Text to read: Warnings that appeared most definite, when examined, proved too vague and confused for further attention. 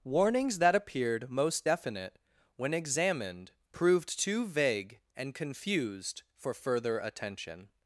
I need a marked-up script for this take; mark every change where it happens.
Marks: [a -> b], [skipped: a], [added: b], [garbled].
Warnings that appeared most definite, when examined, proved too vague and confused for further attention.